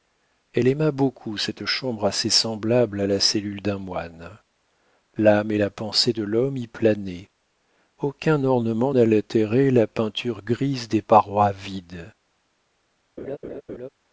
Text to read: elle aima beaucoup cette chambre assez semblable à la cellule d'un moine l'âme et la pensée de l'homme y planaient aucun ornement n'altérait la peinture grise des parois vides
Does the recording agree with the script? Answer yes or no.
yes